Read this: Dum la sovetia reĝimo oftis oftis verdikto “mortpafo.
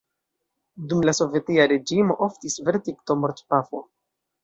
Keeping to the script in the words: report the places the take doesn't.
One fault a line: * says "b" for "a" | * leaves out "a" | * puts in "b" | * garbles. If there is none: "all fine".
* leaves out "oftis"